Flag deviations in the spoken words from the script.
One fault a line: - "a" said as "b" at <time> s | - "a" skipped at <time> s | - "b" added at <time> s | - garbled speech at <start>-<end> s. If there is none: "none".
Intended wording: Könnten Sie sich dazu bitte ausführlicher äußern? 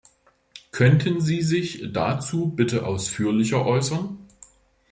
none